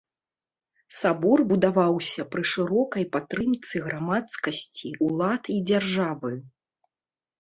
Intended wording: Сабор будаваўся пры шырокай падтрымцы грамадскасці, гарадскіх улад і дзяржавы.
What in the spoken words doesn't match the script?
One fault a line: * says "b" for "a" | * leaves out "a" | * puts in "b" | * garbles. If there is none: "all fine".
* leaves out "гарадскіх"